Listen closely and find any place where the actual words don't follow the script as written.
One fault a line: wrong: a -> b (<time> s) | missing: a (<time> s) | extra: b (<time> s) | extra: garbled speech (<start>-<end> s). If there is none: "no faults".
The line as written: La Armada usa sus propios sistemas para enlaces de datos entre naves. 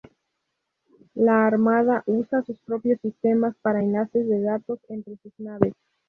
extra: sus (5.2 s)